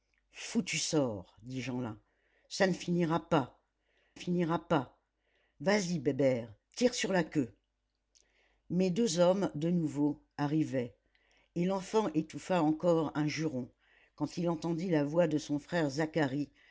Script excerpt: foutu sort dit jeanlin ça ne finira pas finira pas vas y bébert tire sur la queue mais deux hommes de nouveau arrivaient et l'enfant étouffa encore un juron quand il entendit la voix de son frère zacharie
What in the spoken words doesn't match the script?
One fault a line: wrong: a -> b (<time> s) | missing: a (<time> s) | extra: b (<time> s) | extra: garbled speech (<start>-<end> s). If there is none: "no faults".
no faults